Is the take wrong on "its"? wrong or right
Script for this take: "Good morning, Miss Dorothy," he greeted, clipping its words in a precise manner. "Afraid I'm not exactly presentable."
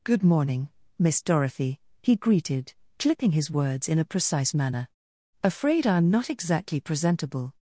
wrong